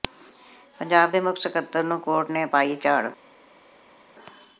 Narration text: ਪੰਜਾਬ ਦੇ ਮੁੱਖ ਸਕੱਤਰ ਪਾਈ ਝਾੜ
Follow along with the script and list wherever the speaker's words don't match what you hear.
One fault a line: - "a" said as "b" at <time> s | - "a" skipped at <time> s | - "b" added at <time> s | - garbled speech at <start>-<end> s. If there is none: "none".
- "ਨੂੰ ਕੋਰਟ ਨੇ" added at 1.8 s